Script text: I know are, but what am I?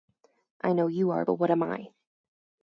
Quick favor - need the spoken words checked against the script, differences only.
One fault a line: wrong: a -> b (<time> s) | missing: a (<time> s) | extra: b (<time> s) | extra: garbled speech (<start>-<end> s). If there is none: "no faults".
extra: you (0.9 s)